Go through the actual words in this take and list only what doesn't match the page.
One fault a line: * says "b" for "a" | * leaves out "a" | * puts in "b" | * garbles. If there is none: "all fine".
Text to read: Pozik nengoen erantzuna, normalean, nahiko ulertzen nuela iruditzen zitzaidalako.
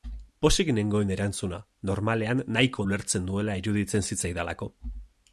all fine